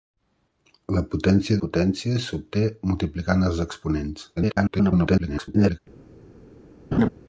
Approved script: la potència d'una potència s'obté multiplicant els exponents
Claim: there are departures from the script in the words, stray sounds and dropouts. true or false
true